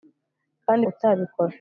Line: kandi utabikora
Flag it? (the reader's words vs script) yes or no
no